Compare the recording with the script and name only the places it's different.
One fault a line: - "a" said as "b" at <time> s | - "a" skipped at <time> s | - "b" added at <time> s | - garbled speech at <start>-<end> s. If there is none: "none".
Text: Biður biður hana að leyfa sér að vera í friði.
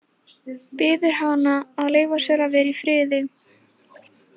- "biður" skipped at 1.1 s